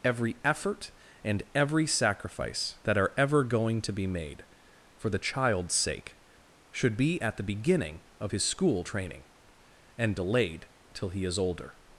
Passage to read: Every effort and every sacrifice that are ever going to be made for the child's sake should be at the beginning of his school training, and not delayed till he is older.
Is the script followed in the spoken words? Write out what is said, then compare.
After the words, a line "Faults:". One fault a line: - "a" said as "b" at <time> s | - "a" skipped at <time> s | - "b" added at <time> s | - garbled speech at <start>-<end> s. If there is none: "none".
Every effort and every sacrifice that are ever going to be made for the child's sake should be at the beginning of his school training, and delayed till he is older.
Faults:
- "not" skipped at 10.1 s